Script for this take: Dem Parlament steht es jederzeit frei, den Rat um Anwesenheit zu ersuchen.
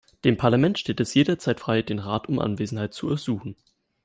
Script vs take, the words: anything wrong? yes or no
no